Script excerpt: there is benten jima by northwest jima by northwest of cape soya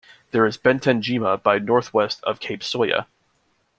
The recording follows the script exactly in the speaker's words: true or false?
false